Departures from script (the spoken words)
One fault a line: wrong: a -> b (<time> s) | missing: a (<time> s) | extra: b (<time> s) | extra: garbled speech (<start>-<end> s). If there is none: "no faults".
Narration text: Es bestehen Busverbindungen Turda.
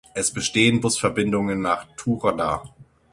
extra: nach (1.6 s)